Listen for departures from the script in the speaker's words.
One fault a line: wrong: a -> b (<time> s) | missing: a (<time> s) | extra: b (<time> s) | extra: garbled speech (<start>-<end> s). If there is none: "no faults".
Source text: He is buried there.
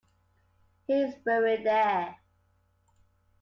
no faults